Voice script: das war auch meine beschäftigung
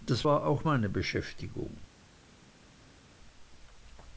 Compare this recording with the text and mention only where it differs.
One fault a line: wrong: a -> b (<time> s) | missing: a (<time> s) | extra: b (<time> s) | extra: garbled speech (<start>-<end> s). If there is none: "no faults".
no faults